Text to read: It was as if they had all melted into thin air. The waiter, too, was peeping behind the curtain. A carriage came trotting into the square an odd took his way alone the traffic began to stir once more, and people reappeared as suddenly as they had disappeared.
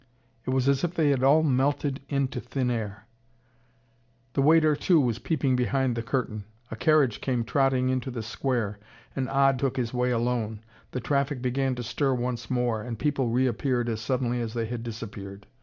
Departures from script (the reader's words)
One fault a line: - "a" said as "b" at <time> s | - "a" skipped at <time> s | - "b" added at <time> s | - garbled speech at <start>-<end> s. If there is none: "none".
none